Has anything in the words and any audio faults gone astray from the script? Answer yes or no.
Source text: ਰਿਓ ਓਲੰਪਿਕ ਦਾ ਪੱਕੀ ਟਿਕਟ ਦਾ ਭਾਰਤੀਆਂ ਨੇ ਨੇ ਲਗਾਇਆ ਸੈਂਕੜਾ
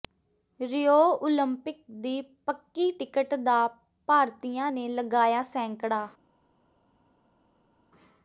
yes